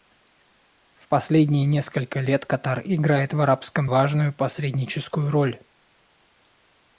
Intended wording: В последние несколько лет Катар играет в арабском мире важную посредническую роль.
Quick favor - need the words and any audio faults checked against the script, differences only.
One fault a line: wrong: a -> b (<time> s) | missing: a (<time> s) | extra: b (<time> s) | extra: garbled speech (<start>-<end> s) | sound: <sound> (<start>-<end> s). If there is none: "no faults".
missing: мире (3.9 s)